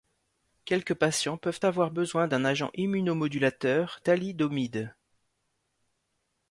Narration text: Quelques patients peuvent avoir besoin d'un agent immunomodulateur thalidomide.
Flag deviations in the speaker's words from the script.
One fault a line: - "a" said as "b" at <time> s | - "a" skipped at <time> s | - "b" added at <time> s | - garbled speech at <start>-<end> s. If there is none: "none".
none